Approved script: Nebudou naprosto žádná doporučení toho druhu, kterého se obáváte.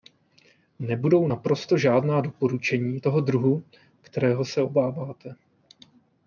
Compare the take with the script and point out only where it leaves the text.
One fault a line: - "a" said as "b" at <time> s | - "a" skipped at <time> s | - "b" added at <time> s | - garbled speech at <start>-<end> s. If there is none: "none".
none